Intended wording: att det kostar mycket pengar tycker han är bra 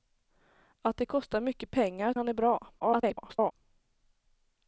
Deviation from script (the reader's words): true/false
true